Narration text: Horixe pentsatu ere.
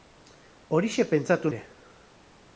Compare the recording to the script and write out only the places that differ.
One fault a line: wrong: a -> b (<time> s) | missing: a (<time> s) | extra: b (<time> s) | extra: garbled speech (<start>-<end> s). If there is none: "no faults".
no faults